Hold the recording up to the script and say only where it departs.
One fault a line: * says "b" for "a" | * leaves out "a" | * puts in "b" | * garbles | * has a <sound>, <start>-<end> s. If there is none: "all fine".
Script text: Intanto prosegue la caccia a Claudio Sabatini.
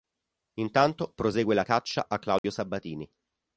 * has a dropout, 2.4-2.4 s